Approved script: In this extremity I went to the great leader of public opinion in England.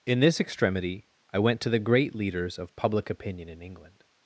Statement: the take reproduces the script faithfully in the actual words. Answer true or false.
false